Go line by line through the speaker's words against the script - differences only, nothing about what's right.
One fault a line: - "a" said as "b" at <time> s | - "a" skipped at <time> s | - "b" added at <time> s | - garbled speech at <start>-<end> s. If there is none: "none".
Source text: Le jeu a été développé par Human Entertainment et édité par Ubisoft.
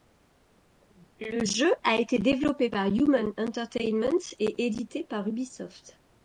none